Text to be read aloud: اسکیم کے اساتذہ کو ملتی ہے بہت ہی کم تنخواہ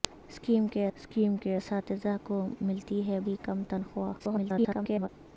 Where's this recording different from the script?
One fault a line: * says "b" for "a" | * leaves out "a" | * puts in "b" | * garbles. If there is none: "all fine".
* puts in "اسکیم کے"
* leaves out "بہت"
* garbles